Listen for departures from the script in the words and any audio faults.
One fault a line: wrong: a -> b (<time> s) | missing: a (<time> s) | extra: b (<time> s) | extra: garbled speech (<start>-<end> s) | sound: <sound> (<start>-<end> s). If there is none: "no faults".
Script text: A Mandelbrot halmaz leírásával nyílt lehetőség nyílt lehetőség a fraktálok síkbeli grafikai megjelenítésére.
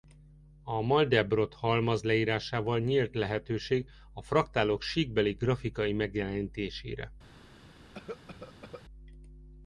missing: nyílt lehetőség (3.9 s)
sound: cough (7.9-8.8 s)